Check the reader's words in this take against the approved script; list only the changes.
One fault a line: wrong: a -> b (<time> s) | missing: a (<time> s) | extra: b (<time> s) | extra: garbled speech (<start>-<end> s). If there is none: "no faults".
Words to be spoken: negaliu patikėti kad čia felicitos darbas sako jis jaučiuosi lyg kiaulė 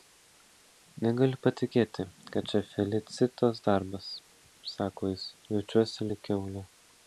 no faults